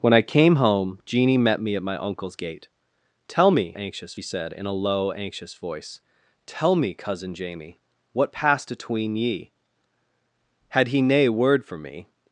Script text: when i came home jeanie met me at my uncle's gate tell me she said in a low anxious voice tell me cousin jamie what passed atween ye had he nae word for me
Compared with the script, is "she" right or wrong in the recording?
wrong